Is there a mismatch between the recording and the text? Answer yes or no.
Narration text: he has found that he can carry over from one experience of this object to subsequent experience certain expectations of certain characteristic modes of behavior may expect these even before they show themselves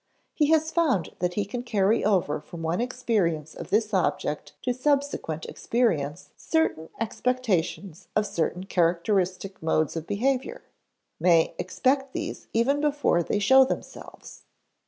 no